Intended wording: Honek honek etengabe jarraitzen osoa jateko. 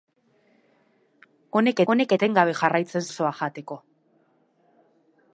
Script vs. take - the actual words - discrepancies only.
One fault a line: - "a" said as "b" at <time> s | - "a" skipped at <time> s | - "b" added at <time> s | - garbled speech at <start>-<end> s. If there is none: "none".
none